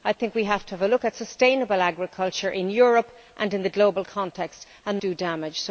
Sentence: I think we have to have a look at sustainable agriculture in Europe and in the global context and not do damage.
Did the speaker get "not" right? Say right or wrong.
wrong